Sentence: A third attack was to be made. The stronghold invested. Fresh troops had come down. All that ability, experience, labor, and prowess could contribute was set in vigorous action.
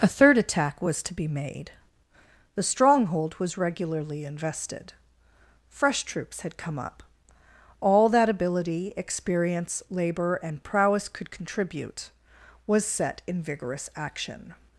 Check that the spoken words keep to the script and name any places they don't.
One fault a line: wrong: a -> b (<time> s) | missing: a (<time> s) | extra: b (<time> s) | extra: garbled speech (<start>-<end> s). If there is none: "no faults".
extra: was regularly (3.4 s)
wrong: down -> up (6.8 s)